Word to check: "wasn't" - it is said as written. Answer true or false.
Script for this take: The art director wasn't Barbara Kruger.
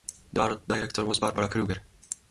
false